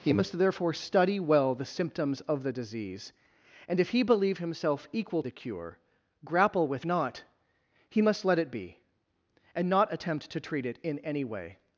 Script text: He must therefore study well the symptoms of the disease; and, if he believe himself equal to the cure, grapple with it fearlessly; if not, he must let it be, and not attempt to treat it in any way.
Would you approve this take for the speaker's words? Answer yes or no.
no